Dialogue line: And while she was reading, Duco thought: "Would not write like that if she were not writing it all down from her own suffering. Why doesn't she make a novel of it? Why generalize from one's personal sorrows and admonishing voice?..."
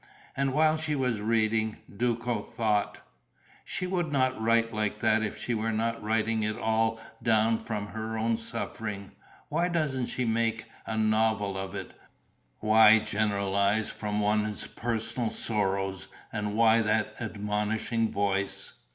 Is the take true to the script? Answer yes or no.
no